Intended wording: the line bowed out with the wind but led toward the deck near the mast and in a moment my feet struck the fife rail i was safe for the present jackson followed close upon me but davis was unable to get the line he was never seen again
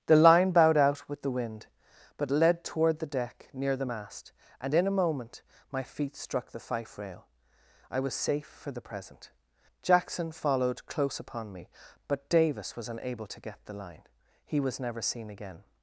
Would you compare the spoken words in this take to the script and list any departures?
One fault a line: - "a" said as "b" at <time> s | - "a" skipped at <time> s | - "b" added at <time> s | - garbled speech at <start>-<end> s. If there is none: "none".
none